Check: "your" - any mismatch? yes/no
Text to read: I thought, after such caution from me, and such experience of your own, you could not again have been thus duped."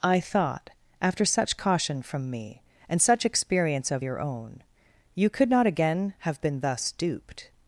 no